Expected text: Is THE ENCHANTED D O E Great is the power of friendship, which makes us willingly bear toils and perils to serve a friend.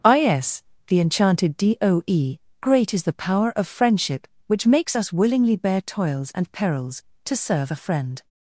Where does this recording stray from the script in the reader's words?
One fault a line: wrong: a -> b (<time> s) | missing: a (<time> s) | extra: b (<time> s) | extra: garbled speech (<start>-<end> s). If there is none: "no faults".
no faults